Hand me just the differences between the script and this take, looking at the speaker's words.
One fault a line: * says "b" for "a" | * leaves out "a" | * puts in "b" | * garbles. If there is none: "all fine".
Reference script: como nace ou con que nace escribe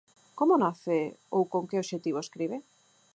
* says "obxectivo" for "nace"